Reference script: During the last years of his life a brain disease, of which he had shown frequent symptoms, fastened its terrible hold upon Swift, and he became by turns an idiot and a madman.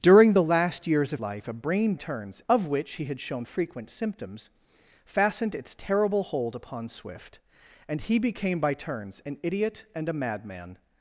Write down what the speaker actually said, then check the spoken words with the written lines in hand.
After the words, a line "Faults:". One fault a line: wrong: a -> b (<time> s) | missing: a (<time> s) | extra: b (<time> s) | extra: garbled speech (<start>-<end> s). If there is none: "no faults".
During the last years of life a brain turns, of which he had shown frequent symptoms, fastened its terrible hold upon Swift, and he became by turns an idiot and a madman.
Faults:
missing: his (1.2 s)
wrong: disease -> turns (1.9 s)